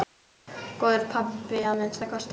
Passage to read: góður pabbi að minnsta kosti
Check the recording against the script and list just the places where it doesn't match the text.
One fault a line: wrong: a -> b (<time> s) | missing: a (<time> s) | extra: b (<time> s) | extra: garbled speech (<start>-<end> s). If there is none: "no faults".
no faults